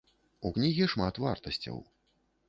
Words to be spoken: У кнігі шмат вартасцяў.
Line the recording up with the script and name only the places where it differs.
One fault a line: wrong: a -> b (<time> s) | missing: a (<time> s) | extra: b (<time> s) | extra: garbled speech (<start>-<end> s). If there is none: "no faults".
no faults